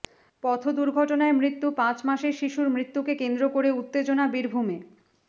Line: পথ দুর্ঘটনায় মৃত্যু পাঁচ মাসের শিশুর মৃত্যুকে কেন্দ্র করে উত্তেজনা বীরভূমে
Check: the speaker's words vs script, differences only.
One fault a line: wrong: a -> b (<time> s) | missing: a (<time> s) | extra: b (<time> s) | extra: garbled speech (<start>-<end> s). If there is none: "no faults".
no faults